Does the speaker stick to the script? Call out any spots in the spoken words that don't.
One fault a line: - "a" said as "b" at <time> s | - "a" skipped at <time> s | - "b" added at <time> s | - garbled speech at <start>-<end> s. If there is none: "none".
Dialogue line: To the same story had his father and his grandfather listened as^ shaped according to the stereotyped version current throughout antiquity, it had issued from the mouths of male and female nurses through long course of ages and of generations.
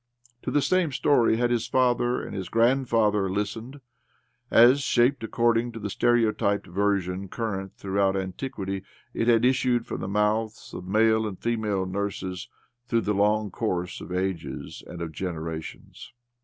- "the" added at 13.0 s